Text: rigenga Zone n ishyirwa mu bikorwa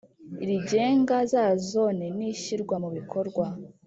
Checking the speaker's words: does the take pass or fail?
fail